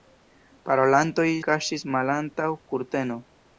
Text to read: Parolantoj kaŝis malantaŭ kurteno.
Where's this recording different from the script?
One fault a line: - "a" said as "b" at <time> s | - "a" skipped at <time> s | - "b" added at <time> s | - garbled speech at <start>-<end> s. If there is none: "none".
none